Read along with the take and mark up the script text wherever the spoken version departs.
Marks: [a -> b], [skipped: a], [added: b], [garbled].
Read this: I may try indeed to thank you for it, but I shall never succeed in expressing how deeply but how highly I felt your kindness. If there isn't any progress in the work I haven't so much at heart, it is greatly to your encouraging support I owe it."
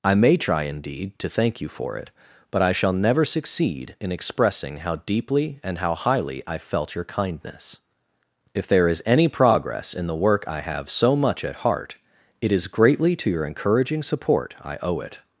I may try indeed to thank you for it, but I shall never succeed in expressing how deeply [but -> and] how highly I felt your kindness. If there [isn't -> is] any progress in the work I [haven't -> have] so much at heart, it is greatly to your encouraging support I owe it."